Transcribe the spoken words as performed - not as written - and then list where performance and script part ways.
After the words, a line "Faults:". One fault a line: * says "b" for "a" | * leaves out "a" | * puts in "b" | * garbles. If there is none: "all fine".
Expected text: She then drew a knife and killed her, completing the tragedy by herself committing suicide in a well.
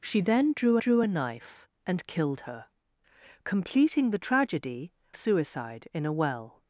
She then drew drew a knife and killed her, completing the tragedy suicide in a well.
Faults:
* puts in "drew"
* leaves out "by herself committing"